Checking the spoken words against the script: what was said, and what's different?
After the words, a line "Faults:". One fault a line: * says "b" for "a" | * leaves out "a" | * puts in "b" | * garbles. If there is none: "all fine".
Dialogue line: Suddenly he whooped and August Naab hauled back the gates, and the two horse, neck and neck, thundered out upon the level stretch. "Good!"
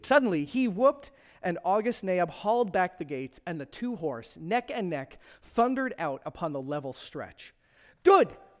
Suddenly he whooped and August Naab hauled back the gates, and the two horse, neck and neck, thundered out upon the level stretch. "Good!"
Faults:
all fine